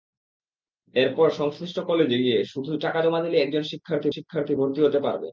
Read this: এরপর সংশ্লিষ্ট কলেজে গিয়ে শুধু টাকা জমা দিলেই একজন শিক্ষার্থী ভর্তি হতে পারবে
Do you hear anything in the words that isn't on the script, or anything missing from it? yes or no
yes